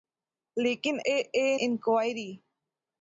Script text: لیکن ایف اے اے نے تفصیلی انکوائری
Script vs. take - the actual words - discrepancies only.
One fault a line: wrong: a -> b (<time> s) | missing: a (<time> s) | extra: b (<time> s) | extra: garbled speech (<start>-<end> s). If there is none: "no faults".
missing: ایف (0.9 s)
missing: نے تفصیلی (1.5 s)